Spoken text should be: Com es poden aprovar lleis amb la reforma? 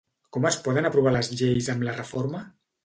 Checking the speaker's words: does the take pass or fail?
fail